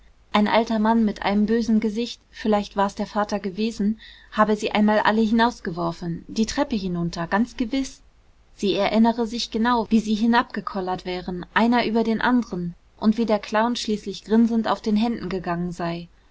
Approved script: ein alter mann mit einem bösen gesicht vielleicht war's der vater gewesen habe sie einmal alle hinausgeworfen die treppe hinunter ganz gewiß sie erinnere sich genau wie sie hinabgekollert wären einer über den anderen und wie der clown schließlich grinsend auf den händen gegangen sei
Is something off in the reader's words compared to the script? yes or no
no